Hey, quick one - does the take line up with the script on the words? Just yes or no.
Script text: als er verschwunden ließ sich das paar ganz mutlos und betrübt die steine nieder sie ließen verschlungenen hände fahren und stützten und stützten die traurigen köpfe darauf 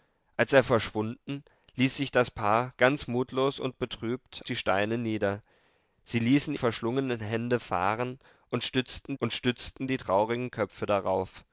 yes